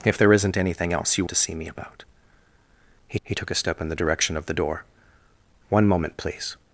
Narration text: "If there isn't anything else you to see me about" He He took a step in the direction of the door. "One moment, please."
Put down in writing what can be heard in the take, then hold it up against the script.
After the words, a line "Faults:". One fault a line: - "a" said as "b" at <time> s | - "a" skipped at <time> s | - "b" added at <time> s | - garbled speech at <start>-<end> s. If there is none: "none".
"If there isn't anything else you to see me about" He He took a step in the direction of the door. "One moment, please."
Faults:
none